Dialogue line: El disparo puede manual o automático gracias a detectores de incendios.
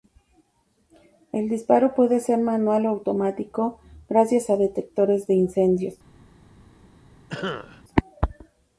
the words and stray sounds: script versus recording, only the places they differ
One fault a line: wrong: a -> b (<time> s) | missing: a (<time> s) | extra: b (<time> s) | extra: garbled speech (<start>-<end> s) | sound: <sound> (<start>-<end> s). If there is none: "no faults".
extra: ser (2.2 s)
sound: cough (7.3-7.8 s)